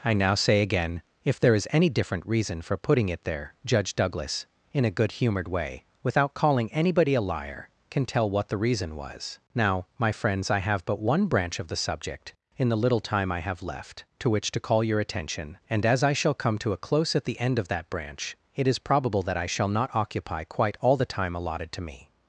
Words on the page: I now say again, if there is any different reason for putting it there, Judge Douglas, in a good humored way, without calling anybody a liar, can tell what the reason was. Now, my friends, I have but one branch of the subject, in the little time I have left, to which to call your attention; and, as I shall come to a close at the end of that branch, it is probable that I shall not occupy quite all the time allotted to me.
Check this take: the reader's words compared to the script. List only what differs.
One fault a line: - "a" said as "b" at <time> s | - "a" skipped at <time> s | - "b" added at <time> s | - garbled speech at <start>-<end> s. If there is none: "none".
none